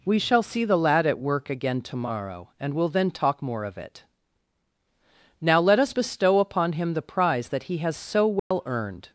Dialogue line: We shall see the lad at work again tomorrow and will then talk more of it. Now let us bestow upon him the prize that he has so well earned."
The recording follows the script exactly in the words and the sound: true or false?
false